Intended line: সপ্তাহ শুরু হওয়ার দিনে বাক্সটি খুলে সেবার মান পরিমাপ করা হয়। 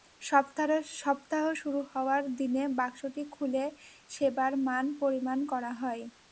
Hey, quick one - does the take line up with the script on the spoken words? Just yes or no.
yes